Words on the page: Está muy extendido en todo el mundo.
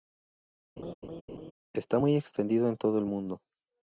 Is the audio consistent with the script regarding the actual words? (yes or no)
yes